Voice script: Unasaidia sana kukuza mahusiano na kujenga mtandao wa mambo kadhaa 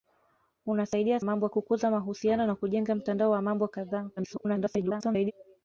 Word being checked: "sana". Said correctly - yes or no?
no